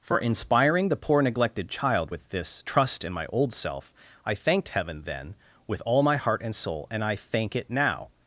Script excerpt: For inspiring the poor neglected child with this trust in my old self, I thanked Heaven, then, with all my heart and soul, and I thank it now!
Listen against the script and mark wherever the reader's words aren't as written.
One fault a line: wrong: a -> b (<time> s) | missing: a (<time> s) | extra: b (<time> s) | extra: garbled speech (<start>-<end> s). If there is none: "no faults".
no faults